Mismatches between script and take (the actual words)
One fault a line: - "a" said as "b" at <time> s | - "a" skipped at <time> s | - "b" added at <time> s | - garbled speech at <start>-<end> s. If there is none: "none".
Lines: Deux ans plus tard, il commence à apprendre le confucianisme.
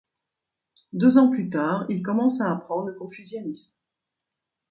none